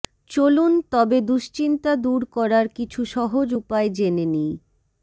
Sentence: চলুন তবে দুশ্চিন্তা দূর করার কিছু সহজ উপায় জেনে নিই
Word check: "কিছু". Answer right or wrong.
right